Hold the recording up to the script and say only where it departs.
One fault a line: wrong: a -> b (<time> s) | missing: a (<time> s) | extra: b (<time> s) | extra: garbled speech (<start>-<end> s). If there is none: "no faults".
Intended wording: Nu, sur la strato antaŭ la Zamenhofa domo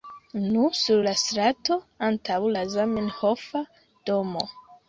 no faults